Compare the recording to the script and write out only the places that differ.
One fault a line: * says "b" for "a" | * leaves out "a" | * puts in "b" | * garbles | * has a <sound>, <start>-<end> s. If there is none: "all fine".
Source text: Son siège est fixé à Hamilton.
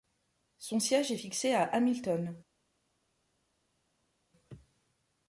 all fine